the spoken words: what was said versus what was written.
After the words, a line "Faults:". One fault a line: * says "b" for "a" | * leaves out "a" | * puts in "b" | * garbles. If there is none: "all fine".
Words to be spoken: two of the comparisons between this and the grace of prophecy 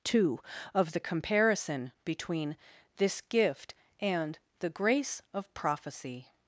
two of the comparison between this gift and the grace of prophecy
Faults:
* says "comparison" for "comparisons"
* puts in "gift"